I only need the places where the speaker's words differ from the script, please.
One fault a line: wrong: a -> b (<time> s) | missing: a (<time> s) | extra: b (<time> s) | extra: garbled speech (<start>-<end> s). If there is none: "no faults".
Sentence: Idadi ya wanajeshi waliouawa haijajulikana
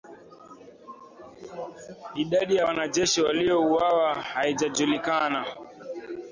no faults